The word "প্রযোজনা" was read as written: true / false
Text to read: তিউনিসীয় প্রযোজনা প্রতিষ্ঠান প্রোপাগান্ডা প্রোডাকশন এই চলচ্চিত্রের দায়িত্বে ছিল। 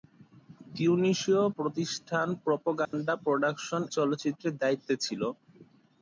false